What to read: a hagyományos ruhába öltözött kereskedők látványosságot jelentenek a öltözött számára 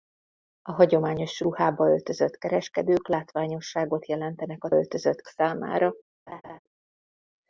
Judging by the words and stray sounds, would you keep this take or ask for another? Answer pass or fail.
fail